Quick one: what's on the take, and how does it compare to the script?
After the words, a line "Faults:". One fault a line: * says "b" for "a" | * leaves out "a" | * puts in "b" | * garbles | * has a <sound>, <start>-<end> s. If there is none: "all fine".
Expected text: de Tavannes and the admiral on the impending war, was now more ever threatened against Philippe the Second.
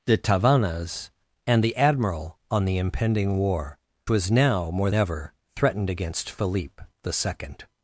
de Tavannes and the admiral on the impending war, was now more ever threatened against Philippe the Second.
Faults:
all fine